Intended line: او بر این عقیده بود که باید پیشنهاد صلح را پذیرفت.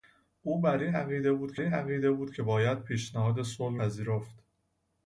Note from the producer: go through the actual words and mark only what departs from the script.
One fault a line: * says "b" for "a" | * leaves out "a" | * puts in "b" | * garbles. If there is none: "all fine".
* puts in "این عقیده بود"
* leaves out "را"